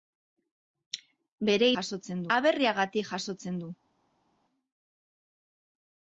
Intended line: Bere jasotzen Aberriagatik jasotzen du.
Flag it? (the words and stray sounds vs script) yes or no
no